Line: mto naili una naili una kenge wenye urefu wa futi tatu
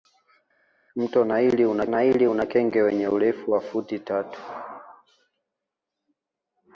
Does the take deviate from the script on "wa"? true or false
false